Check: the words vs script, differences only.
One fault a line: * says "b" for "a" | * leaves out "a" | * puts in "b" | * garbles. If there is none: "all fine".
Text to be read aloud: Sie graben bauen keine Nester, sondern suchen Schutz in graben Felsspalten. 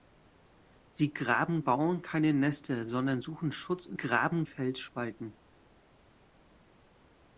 all fine